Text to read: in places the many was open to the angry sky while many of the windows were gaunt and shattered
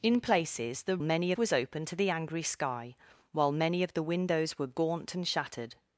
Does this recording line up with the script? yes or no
yes